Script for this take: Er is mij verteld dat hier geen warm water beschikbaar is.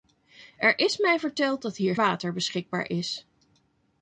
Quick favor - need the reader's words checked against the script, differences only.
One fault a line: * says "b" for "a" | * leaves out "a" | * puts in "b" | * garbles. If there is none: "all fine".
* leaves out "geen warm"